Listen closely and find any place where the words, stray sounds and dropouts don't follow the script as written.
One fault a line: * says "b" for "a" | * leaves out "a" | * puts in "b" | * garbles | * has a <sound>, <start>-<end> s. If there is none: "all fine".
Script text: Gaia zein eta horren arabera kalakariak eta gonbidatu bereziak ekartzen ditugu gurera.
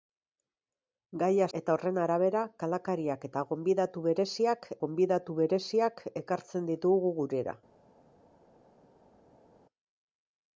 * leaves out "zein"
* puts in "gonbidatu bereziak"